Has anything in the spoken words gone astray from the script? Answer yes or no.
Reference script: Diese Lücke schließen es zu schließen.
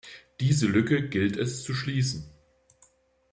yes